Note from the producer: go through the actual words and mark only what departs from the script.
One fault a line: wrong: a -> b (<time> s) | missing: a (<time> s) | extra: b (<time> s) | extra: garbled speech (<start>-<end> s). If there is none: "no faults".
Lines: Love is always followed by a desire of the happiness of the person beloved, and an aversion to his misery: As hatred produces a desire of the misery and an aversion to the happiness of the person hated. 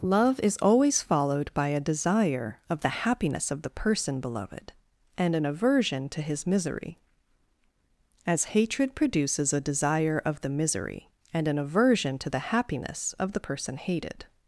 no faults